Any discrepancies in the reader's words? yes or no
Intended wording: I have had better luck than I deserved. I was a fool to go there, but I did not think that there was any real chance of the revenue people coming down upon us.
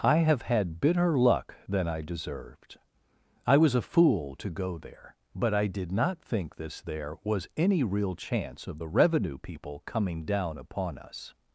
yes